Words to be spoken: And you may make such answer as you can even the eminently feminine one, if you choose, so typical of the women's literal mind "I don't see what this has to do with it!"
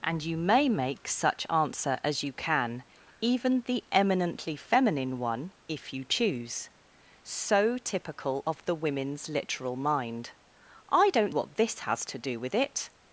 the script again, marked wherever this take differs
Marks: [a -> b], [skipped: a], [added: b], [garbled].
And you may make such answer as you can even the eminently feminine one, if you choose, so typical of the women's literal mind "I don't [skipped: see] what this has to do with it!"